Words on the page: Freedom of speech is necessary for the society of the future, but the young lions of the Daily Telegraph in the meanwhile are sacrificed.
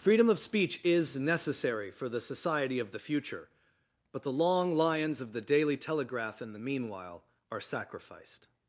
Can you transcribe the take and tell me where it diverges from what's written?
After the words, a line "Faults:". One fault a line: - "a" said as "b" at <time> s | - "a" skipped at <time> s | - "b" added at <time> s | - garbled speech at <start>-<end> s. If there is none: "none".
Freedom of speech is necessary for the society of the future, but the long lions of the Daily Telegraph in the meanwhile are sacrificed.
Faults:
- "young" said as "long" at 4.3 s